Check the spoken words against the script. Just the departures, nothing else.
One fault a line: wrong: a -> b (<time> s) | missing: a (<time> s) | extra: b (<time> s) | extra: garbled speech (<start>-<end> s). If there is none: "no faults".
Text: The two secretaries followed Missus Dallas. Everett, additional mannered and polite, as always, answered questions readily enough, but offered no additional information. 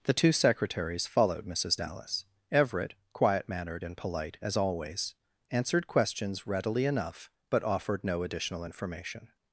wrong: additional -> quiet (3.1 s)